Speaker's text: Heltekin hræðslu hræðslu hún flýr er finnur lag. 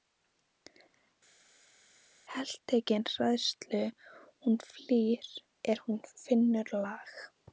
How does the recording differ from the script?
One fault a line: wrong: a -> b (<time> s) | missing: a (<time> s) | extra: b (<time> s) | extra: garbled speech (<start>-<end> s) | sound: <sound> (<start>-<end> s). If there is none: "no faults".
missing: hræðslu (3.8 s)
extra: hún (5.9 s)